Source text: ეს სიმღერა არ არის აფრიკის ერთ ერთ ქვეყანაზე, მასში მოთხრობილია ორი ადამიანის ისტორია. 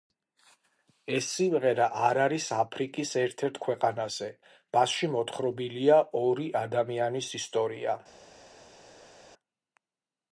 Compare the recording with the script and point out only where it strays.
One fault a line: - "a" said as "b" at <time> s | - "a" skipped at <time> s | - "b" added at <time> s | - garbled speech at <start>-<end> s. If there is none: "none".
none